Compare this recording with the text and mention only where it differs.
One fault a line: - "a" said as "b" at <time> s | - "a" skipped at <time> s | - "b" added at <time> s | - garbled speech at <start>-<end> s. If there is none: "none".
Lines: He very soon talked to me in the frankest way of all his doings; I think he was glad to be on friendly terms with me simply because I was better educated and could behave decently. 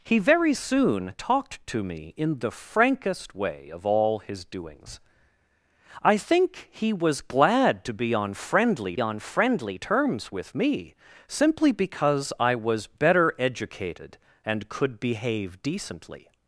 - "on friendly" added at 9.0 s